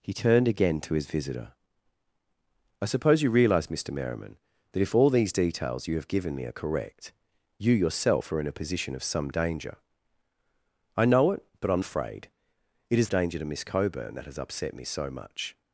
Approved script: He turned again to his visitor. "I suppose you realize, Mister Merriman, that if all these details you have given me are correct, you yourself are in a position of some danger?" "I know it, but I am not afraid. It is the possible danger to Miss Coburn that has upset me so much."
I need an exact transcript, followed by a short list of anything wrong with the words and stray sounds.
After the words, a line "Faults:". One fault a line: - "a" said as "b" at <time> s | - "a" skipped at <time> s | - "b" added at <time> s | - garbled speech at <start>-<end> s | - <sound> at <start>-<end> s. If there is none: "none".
He turned again to his visitor. "I suppose you realize, Mister Merriman, that if all these details you have given me are correct, you yourself are in a position of some danger?" "I know it, but I am afraid. It is danger to Miss Coburn that has upset me so much."
Faults:
- "not" skipped at 11.8 s
- "the possible" skipped at 13.1 s